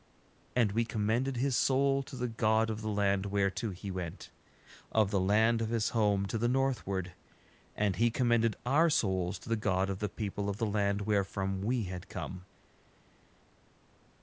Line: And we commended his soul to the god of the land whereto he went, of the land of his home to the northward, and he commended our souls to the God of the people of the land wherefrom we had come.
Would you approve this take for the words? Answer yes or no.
yes